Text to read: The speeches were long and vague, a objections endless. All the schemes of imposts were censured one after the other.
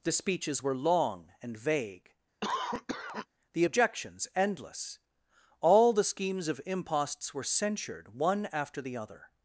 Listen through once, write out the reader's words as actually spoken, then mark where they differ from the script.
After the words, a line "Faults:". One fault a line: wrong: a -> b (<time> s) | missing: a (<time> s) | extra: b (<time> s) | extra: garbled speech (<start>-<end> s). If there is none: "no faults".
The speeches were long and vague, the objections endless. All the schemes of imposts were censured one after the other.
Faults:
wrong: a -> the (3.5 s)